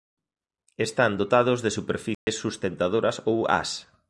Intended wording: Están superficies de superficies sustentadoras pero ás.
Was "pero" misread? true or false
true